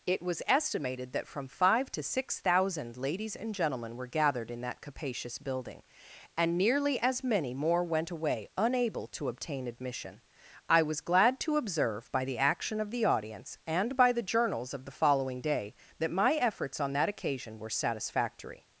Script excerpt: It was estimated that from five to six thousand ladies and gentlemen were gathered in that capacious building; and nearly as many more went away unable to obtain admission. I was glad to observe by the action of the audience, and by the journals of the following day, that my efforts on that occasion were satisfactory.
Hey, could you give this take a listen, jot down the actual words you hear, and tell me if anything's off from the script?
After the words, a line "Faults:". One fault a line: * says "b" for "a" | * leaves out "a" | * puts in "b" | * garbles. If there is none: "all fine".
It was estimated that from five to six thousand ladies and gentlemen were gathered in that capacious building; and nearly as many more went away unable to obtain admission. I was glad to observe by the action of the audience, and by the journals of the following day, that my efforts on that occasion were satisfactory.
Faults:
all fine